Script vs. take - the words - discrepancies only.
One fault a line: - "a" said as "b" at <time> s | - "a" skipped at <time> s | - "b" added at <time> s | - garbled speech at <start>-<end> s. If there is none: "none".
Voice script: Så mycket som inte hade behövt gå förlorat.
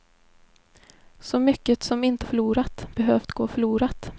- "hade" said as "förlorat" at 2.2 s